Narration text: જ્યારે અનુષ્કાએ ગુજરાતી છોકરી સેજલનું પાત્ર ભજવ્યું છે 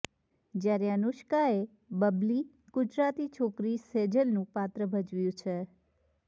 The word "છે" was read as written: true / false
true